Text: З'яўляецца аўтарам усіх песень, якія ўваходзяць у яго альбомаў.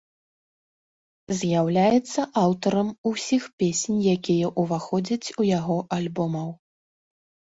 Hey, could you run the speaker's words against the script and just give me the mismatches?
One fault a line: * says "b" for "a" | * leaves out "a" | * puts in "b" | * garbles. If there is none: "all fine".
all fine